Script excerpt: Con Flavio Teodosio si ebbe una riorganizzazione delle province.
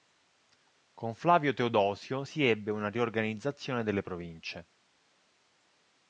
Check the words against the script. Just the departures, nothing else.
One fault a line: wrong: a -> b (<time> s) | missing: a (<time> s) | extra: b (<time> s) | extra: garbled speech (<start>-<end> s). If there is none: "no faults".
no faults